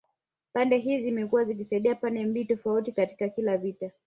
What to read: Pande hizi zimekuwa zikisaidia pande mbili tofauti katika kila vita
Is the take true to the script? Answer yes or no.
yes